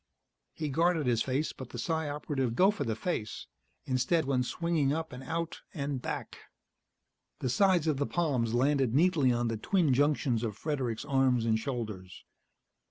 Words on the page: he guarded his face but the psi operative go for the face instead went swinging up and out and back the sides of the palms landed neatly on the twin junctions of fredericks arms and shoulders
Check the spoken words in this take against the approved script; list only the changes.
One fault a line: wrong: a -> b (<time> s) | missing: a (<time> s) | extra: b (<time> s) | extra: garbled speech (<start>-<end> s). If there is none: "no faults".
no faults